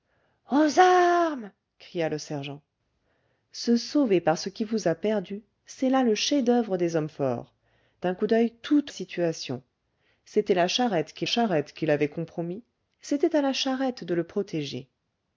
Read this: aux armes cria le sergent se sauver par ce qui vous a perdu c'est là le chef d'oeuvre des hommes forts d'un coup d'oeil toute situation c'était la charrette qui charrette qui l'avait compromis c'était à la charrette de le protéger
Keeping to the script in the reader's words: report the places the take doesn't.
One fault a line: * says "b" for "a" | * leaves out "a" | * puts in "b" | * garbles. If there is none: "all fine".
all fine